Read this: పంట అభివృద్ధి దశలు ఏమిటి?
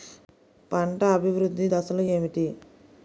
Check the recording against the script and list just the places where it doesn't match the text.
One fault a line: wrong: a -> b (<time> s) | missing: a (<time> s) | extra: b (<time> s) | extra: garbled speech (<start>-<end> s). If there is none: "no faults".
no faults